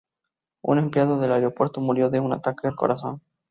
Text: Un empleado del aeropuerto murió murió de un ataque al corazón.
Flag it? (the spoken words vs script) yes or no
yes